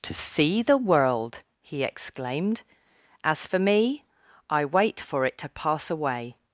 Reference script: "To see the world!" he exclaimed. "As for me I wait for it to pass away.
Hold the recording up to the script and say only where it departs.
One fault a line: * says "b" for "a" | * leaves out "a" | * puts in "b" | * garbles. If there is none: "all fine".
all fine